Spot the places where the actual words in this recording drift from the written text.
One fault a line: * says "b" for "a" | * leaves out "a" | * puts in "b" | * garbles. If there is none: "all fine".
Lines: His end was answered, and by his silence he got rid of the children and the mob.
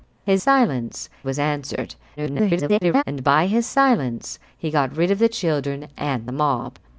* says "silence" for "end"
* garbles